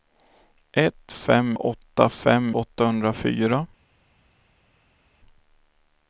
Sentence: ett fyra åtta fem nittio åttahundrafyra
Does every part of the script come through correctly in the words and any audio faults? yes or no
no